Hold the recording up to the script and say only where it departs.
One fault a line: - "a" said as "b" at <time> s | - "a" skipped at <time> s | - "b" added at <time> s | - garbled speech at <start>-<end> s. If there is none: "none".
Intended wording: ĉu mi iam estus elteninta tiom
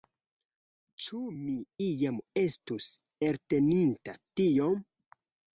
none